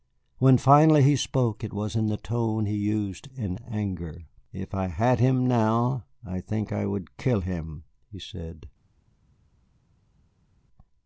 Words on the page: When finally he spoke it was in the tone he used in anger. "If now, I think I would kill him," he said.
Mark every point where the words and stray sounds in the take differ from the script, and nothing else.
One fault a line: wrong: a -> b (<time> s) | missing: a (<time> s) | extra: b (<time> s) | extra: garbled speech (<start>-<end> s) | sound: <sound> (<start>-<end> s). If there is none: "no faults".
extra: I had him (4.7 s)